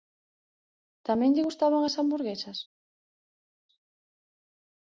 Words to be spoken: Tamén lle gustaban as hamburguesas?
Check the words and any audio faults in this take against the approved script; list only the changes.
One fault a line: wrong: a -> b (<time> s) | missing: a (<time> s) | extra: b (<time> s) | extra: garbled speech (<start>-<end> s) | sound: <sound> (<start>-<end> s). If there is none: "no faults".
no faults